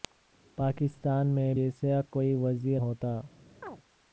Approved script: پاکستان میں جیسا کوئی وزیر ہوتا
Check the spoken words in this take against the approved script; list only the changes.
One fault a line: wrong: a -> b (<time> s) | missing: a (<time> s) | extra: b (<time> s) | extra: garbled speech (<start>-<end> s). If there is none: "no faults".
no faults